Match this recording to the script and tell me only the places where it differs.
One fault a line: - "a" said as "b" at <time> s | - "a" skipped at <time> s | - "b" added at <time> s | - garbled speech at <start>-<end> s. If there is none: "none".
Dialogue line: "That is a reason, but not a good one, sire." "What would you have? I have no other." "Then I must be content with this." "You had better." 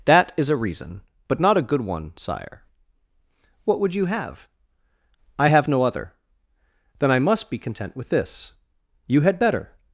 none